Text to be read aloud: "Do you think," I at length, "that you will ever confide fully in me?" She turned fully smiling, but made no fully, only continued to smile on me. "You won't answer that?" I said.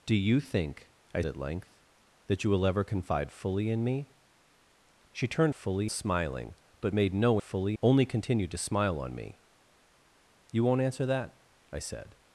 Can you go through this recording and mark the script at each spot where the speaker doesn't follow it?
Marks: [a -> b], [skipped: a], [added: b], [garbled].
"Do you think," I at length, "that you will ever confide fully in me?" She turned fully smiling, but made no fully, only continued to smile on me. "You won't answer that?" I said.